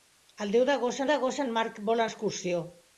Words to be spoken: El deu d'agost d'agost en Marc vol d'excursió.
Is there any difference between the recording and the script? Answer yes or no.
no